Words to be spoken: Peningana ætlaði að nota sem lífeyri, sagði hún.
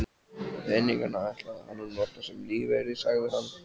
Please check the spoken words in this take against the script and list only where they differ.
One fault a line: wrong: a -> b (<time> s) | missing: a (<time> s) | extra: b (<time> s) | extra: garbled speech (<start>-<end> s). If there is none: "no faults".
extra: hann (1.7 s)
wrong: hún -> hann (3.4 s)